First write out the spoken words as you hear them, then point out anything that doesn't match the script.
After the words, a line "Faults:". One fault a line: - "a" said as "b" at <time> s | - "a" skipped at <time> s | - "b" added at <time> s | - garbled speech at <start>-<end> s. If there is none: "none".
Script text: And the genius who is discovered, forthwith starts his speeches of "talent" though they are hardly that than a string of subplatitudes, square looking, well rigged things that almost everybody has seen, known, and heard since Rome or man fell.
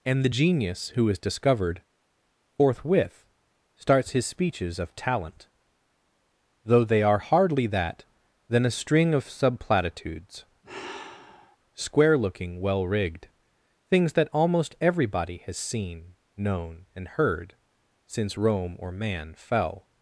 And the genius who is discovered, forthwith starts his speeches of "talent" though they are hardly that than a string of subplatitudes, square looking, well rigged things that almost everybody has seen, known, and heard since Rome or man fell.
Faults:
none